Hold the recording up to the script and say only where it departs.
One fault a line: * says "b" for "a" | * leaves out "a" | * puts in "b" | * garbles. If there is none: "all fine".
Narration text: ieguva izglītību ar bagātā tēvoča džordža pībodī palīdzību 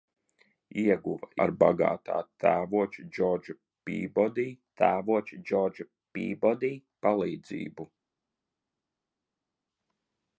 * leaves out "izglītību"
* puts in "tēvoča džordža pībodī"